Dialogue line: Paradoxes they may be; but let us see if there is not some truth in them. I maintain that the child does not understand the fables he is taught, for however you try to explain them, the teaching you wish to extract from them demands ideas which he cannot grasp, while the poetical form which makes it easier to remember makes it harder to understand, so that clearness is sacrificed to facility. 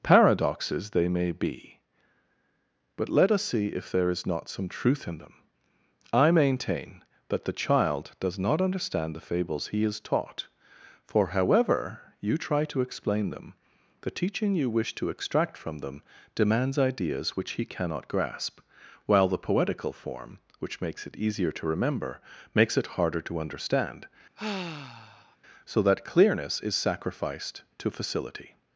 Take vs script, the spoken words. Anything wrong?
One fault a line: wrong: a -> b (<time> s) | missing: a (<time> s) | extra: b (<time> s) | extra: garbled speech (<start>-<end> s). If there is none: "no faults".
no faults